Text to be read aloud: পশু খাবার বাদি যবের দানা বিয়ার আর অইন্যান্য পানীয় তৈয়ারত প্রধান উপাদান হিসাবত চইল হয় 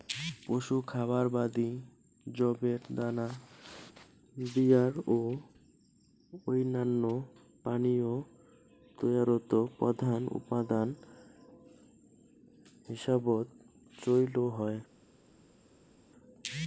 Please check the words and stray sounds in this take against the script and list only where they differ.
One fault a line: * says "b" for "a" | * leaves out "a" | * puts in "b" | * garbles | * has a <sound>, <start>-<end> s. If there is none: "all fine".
* says "ও" for "আর"